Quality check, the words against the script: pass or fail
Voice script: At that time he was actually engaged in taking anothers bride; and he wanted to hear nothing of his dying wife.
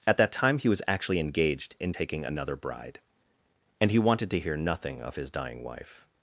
fail